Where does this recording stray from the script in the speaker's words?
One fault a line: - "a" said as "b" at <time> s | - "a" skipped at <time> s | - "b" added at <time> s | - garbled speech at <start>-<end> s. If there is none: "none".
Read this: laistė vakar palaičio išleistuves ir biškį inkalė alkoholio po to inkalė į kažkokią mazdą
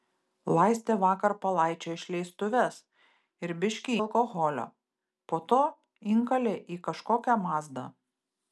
- "inkalė" skipped at 4.0 s